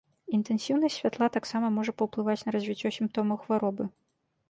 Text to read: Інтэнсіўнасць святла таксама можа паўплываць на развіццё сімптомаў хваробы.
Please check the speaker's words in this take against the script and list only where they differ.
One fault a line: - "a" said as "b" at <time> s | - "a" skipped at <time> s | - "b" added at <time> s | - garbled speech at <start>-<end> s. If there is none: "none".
none